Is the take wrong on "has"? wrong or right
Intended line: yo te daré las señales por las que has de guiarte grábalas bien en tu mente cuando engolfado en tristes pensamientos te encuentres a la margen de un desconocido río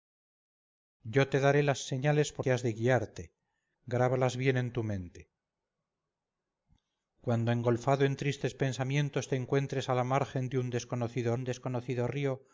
right